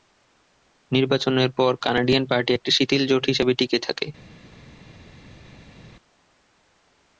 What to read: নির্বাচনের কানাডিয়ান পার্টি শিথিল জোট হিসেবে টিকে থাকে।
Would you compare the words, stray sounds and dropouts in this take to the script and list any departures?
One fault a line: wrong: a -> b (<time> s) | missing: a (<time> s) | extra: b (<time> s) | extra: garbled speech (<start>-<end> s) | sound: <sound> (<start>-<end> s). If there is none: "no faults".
extra: পর (1.6 s)
extra: একটি (2.5 s)